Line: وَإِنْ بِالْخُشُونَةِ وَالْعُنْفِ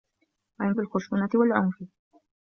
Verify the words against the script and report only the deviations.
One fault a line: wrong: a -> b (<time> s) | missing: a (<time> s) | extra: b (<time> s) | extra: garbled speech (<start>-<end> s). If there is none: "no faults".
no faults